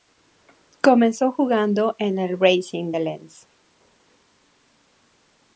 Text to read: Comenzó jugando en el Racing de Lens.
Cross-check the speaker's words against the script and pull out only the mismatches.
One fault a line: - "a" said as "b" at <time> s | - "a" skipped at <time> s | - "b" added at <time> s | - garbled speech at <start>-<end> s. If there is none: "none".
none